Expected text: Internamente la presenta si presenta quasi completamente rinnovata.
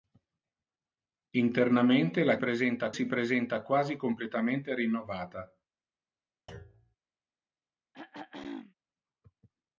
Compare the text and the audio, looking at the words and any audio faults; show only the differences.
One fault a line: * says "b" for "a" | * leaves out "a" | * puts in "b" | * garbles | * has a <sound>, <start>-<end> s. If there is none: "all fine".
* has a thud, 6.5-7.0 s
* has a throat clearing, 7.9-8.7 s